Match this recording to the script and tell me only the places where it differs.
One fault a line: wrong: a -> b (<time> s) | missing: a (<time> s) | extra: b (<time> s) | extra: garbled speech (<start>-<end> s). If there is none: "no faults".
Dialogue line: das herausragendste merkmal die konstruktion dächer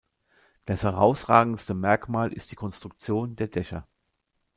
extra: ist (2.3 s)
extra: der (3.3 s)